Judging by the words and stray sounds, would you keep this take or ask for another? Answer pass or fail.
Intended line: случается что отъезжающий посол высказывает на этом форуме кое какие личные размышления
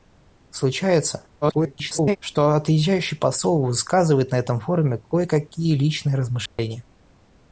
fail